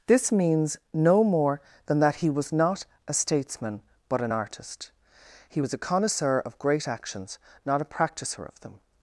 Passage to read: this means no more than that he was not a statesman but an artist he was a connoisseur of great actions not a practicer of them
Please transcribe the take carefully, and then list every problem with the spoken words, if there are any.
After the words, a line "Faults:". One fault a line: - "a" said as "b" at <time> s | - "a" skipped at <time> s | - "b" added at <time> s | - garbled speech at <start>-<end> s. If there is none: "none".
this means no more than that he was not a statesman but an artist he was a connoisseur of great actions not a practicer of them
Faults:
none